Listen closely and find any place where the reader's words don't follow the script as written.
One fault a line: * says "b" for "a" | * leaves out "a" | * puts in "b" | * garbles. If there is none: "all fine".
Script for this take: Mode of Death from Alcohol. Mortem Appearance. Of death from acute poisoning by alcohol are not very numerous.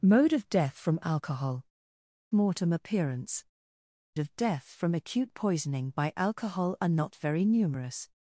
all fine